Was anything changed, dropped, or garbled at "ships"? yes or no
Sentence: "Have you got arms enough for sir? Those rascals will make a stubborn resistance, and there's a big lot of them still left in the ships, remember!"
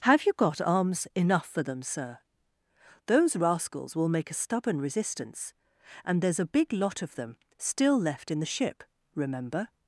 yes